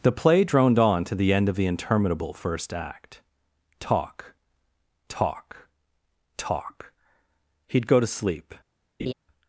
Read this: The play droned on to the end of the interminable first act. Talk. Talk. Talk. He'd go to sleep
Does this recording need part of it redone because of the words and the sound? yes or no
yes